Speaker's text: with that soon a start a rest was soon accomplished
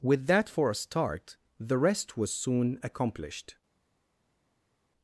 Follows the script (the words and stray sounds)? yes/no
no